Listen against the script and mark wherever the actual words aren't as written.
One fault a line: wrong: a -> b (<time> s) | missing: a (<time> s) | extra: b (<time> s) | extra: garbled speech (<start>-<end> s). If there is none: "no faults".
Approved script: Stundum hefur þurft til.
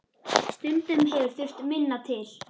extra: minna (1.7 s)